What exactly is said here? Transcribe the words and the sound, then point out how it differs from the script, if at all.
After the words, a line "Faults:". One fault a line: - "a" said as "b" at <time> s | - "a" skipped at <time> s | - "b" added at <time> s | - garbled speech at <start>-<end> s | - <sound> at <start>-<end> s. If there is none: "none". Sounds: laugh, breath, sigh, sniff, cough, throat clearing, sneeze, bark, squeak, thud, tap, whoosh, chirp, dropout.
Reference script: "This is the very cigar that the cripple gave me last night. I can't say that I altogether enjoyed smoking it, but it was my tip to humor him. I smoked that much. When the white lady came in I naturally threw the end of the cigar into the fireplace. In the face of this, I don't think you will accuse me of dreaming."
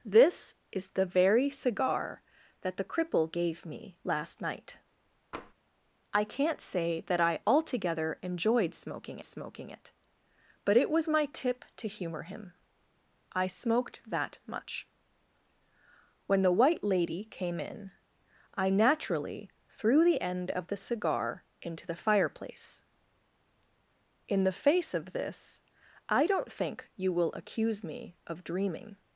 "This is the very cigar that the cripple gave me last night. I can't say that I altogether enjoyed smoking smoking it, but it was my tip to humor him. I smoked that much. When the white lady came in I naturally threw the end of the cigar into the fireplace. In the face of this, I don't think you will accuse me of dreaming."
Faults:
- tap at 5.3-5.5 s
- "smoking" added at 9.2 s